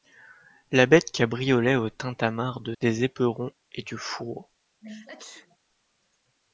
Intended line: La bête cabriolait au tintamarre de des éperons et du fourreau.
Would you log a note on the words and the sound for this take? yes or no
yes